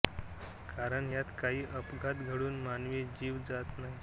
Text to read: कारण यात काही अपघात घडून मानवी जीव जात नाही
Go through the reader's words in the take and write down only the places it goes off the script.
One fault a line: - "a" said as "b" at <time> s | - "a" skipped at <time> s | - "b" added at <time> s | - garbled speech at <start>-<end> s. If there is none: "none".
none